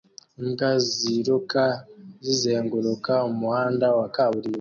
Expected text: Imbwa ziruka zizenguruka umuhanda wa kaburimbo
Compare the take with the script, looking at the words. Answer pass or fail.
pass